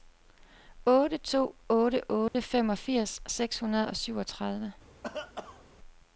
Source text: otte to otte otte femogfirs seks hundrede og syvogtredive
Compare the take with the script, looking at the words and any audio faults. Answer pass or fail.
fail